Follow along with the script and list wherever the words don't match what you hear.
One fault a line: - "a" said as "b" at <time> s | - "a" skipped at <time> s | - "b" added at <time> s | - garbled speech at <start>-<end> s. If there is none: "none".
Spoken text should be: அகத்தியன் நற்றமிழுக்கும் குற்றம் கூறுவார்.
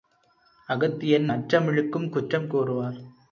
none